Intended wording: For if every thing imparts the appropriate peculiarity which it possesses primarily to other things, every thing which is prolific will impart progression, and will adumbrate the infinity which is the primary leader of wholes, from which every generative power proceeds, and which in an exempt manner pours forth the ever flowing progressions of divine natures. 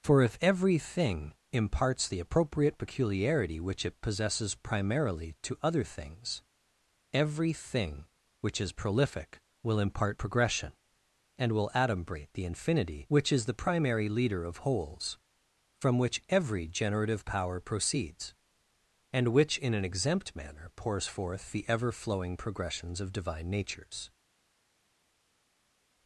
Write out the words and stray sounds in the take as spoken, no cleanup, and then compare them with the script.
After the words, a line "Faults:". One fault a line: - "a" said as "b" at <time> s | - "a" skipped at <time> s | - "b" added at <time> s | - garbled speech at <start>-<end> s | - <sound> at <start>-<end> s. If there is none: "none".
For if every thing imparts the appropriate peculiarity which it possesses primarily to other things, every thing which is prolific will impart progression, and will adumbrate the infinity which is the primary leader of wholes, from which every generative power proceeds, and which in an exempt manner pours forth the ever flowing progressions of divine natures.
Faults:
none